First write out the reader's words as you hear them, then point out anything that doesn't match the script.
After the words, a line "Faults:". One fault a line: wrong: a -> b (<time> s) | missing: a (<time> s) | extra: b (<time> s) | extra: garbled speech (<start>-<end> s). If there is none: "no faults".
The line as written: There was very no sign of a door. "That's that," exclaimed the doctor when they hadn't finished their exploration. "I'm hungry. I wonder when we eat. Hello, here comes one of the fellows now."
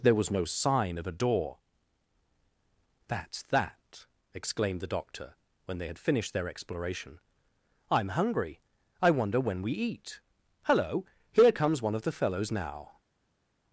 There was no sign of a door. "That's that," exclaimed the doctor when they had finished their exploration. "I'm hungry. I wonder when we eat. Hello, here comes one of the fellows now."
Faults:
missing: very (0.3 s)
wrong: hadn't -> had (5.9 s)